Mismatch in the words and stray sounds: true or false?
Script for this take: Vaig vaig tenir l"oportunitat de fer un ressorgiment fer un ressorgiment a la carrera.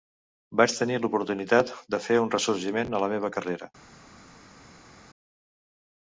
true